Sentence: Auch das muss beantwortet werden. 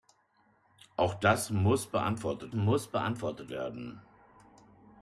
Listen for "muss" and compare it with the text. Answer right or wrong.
right